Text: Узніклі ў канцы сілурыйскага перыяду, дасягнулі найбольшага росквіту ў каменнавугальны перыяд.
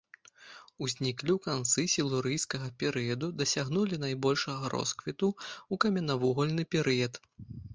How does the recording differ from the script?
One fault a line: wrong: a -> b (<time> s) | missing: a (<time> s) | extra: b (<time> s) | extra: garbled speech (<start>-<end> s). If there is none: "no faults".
no faults